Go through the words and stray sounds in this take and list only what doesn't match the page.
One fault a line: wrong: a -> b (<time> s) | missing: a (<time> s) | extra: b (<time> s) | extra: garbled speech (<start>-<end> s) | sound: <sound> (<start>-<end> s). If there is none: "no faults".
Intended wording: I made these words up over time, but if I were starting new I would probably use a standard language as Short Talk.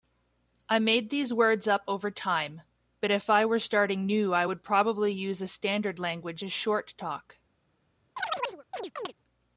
sound: chirp (8.2-9.1 s)